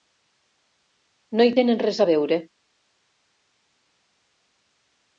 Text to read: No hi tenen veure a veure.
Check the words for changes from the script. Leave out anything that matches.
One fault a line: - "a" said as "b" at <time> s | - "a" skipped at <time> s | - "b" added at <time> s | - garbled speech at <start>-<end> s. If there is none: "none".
- "veure" said as "res" at 1.8 s